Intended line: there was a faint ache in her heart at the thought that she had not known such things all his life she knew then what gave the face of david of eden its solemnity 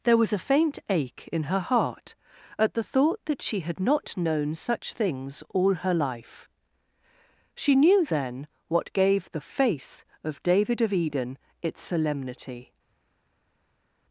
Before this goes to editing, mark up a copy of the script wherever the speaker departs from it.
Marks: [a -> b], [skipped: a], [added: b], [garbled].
there was a faint ache in her heart at the thought that she had not known such things all [his -> her] life she knew then what gave the face of david of eden its solemnity